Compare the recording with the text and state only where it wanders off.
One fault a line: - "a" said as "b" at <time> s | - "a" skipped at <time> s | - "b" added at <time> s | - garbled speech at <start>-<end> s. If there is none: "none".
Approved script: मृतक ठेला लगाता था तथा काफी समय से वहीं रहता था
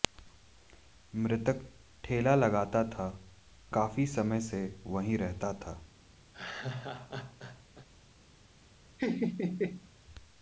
- "तथा" skipped at 3.1 s